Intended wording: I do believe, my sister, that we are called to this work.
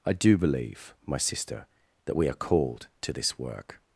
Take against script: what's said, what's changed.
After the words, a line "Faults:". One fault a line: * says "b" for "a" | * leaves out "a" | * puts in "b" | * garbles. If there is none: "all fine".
I do believe, my sister, that we are called to this work.
Faults:
all fine